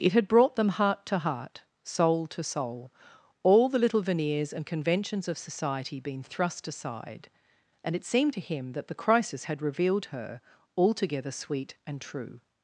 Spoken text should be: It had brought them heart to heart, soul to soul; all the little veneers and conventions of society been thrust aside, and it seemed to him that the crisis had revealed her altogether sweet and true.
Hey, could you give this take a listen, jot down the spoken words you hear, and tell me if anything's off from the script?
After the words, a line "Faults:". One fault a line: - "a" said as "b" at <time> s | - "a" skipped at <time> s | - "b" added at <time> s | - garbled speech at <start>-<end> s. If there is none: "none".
It had brought them heart to heart, soul to soul; all the little veneers and conventions of society been thrust aside, and it seemed to him that the crisis had revealed her altogether sweet and true.
Faults:
none